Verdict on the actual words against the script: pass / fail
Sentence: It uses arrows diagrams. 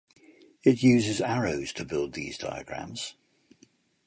fail